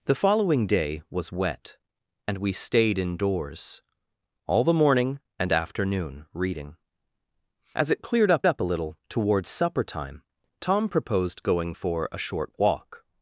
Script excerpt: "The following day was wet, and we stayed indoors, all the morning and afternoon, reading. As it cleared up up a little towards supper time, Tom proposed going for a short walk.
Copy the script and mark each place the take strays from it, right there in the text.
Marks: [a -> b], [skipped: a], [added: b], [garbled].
"The following day was wet, and we stayed indoors, all the morning and afternoon, reading. As it cleared up up a little towards supper time, Tom proposed going for a short walk.